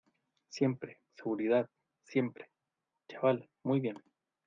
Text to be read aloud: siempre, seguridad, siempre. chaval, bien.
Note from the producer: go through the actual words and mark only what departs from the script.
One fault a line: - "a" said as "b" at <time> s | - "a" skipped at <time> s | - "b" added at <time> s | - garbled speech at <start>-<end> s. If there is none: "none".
- "muy" added at 3.6 s